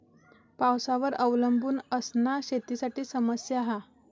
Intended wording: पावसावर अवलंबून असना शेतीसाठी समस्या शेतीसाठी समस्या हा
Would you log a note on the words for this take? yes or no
yes